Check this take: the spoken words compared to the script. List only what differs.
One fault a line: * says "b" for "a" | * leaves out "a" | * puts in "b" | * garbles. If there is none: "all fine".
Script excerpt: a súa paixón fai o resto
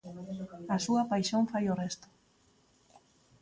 all fine